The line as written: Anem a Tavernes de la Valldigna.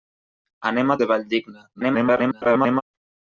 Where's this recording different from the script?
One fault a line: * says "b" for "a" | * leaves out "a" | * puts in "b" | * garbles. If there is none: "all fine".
* leaves out "Tavernes"
* garbles